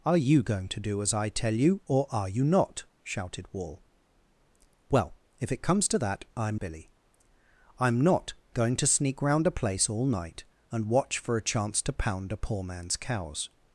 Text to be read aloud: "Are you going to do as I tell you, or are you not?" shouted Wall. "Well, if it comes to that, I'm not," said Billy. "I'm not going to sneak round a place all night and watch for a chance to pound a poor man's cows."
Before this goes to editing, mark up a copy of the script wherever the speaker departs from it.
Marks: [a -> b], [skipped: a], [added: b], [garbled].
"Are you going to do as I tell you, or are you not?" shouted Wall. "Well, if it comes to that, I'm [skipped: not," said] Billy. "I'm not going to sneak round a place all night and watch for a chance to pound a poor man's cows."